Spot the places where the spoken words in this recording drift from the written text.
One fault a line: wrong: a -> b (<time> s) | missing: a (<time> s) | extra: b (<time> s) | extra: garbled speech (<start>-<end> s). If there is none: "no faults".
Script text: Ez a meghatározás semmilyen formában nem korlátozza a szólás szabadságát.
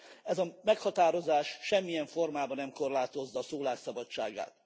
no faults